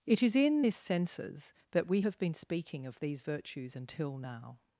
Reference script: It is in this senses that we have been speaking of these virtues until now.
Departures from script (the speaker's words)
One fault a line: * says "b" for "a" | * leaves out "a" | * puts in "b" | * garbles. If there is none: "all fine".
all fine